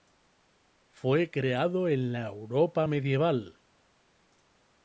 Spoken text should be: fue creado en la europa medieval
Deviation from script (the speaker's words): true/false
false